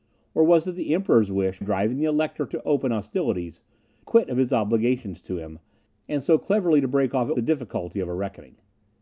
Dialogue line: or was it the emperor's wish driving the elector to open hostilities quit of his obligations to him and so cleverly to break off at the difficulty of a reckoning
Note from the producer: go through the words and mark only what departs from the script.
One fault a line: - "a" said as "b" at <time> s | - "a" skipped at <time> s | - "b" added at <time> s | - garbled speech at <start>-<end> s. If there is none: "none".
none